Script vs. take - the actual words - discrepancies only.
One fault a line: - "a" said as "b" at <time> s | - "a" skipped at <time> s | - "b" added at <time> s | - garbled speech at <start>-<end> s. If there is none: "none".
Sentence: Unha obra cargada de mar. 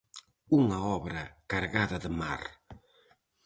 none